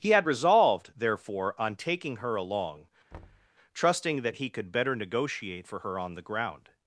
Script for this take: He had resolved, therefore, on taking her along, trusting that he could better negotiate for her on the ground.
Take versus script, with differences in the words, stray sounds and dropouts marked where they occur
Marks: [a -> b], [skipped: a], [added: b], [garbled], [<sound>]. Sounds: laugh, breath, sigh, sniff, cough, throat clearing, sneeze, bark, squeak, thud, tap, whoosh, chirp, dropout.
He had resolved, therefore, on taking her along, [thud] trusting that he could better negotiate for her on the ground.